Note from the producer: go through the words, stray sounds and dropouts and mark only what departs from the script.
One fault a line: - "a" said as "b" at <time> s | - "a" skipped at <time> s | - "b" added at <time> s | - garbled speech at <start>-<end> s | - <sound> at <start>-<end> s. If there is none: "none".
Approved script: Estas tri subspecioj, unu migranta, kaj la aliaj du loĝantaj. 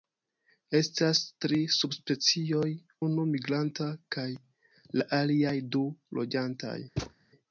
- thud at 7.0-7.1 s